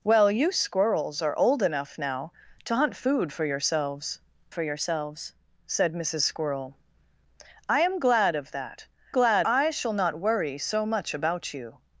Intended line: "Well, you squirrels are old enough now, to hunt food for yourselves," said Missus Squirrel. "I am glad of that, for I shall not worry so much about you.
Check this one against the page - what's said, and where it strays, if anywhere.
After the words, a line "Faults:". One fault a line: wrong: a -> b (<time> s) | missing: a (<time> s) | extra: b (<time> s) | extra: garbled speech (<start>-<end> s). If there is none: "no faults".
"Well, you squirrels are old enough now, to hunt food for yourselves for yourselves," said Missus Squirrel. "I am glad of that, glad I shall not worry so much about you.
Faults:
extra: for yourselves (4.5 s)
wrong: for -> glad (9.1 s)